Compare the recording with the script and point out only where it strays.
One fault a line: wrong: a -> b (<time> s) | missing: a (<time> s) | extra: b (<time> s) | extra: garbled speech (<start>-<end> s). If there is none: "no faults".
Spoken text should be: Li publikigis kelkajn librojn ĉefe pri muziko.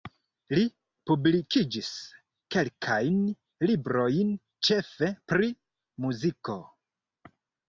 no faults